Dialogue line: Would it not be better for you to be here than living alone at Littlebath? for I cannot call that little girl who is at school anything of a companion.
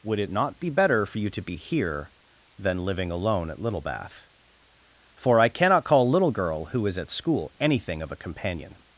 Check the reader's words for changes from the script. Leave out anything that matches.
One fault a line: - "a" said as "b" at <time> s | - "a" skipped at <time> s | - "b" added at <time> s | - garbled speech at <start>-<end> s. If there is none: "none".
- "that" skipped at 6.1 s